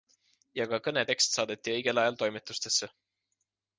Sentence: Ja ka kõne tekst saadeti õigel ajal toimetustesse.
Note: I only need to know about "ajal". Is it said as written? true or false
true